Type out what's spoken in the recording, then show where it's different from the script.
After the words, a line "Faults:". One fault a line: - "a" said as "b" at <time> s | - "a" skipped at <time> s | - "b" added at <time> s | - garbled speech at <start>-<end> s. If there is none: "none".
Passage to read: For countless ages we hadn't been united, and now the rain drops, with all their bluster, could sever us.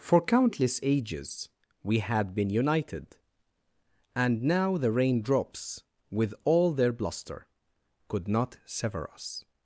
For countless ages we had been united, and now the rain drops, with all their bluster, could not sever us.
Faults:
- "hadn't" said as "had" at 2.0 s
- "not" added at 8.3 s